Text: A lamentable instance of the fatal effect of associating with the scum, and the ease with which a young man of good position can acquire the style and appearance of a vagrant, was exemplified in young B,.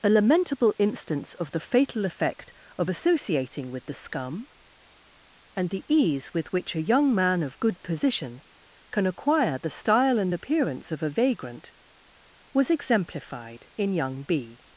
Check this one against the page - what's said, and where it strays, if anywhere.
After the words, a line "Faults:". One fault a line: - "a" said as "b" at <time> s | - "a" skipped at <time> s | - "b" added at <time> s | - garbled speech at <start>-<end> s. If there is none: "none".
A lamentable instance of the fatal effect of associating with the scum, and the ease with which a young man of good position can acquire the style and appearance of a vagrant, was exemplified in young B,.
Faults:
none